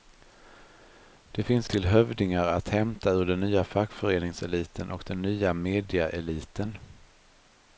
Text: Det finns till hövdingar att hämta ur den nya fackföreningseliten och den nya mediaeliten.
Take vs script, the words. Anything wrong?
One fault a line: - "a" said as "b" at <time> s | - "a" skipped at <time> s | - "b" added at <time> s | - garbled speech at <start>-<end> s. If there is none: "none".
none